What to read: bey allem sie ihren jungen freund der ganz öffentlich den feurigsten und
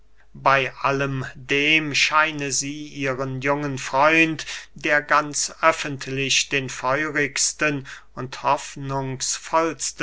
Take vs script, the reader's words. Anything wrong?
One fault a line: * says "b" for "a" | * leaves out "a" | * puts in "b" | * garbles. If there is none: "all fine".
* puts in "dem scheine"